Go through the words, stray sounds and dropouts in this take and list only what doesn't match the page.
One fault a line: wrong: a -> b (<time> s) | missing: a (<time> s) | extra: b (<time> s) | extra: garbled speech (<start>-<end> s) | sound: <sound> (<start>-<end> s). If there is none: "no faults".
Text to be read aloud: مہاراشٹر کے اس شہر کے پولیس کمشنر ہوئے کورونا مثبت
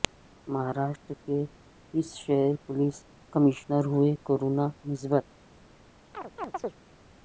missing: کے (2.5 s)
sound: chirp (6.1-6.8 s)